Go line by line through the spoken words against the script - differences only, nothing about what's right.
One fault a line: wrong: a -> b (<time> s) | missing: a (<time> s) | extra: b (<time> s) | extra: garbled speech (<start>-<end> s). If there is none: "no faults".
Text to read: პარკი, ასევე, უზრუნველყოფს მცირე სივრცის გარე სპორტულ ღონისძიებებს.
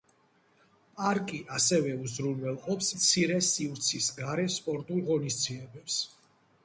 no faults